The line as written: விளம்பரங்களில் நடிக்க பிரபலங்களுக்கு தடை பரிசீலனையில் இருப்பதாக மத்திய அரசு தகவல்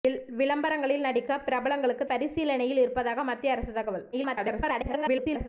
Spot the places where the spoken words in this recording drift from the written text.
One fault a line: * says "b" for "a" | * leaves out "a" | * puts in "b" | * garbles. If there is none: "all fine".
* leaves out "தடை"
* garbles